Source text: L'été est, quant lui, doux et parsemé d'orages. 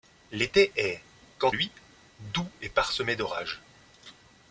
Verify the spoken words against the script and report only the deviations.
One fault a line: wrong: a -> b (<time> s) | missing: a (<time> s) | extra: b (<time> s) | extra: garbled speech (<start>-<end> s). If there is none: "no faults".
no faults